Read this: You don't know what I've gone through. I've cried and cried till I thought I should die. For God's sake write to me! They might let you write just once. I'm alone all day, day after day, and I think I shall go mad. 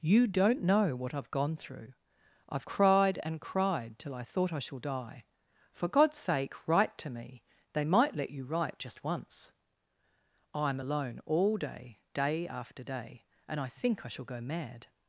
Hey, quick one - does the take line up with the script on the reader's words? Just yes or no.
no